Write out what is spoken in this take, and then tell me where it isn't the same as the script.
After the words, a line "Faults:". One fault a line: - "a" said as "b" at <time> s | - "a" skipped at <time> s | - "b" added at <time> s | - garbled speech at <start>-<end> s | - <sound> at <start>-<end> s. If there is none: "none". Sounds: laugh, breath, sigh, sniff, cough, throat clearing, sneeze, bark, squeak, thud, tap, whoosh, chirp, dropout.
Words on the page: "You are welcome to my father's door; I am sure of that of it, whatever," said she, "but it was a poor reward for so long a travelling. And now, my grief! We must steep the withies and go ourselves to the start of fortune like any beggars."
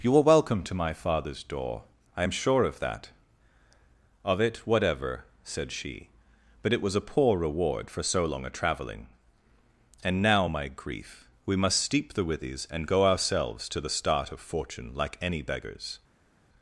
"You are welcome to my father's door; I am sure of that of it, whatever," said she, "but it was a poor reward for so long a travelling. And now, my grief! We must steep the withies and go ourselves to the start of fortune like any beggars."
Faults:
none